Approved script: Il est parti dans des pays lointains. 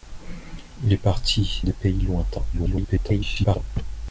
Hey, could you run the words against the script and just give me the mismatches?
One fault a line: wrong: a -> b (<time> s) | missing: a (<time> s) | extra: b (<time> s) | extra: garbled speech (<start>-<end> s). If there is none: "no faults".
missing: dans (1.6 s)
extra: garbled speech (2.5-3.6 s)